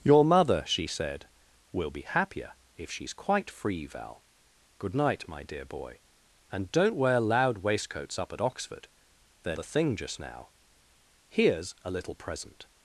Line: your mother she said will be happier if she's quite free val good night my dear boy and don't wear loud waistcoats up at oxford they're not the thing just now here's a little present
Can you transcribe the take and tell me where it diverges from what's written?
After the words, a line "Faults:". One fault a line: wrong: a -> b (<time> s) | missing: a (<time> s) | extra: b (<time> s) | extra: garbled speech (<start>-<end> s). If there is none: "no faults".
your mother she said will be happier if she's quite free val good night my dear boy and don't wear loud waistcoats up at oxford they're the thing just now here's a little present
Faults:
missing: not (9.6 s)